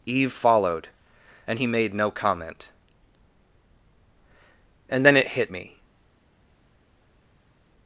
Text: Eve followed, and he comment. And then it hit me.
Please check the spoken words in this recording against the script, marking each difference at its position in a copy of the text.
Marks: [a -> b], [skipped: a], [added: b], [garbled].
Eve followed, and he [added: made no] comment. And then it hit me.